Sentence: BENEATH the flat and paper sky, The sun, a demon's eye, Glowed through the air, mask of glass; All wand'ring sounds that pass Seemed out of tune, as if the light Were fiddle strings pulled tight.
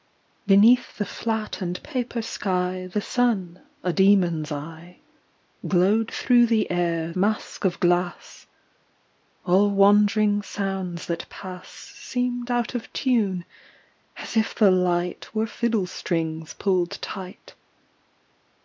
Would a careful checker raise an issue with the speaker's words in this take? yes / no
no